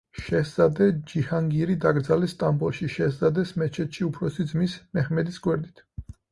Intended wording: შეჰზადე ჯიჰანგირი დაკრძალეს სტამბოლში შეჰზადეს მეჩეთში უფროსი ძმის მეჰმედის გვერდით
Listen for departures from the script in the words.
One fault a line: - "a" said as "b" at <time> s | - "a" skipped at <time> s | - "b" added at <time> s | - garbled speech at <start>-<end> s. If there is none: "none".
none